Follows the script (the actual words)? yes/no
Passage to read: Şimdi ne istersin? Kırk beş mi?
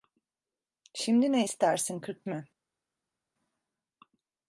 no